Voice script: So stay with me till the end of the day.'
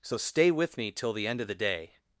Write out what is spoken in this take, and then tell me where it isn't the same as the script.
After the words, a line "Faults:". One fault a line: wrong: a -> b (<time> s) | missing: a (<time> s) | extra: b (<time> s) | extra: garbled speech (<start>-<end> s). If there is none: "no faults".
So stay with me till the end of the day.'
Faults:
no faults